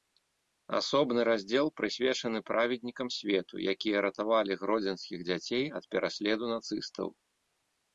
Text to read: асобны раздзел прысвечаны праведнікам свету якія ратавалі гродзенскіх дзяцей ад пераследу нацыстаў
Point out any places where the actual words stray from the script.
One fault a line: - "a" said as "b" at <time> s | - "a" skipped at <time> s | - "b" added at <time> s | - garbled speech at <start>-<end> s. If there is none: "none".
none